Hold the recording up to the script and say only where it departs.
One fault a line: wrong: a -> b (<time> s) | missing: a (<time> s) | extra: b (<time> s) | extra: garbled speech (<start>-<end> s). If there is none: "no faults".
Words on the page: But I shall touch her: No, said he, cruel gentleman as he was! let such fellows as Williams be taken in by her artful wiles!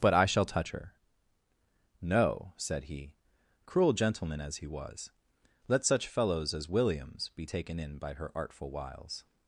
no faults